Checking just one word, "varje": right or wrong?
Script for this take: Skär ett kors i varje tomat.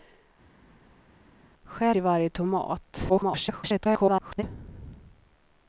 right